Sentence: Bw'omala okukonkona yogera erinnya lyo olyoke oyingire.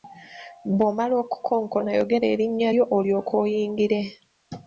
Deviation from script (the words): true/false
false